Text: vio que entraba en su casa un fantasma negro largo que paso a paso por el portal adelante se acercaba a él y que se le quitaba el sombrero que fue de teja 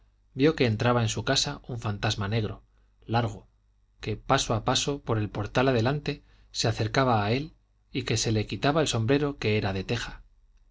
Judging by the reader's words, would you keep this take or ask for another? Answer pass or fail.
fail